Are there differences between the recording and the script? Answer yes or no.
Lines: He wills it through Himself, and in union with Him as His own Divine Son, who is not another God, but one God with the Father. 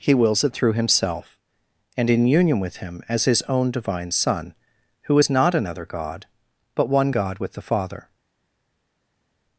no